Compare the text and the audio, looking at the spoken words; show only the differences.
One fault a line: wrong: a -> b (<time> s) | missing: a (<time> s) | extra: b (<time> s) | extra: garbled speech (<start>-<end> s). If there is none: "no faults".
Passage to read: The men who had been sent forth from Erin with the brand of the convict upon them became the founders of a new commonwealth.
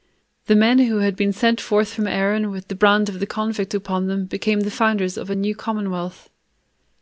no faults